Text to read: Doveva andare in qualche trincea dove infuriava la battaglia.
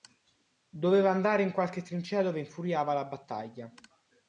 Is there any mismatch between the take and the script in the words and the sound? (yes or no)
no